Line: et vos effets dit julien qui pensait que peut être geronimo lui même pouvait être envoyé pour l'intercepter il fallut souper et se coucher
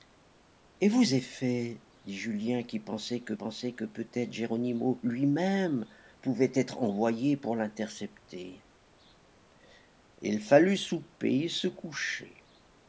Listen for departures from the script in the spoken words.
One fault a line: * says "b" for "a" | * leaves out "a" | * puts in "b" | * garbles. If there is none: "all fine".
* puts in "pensait que"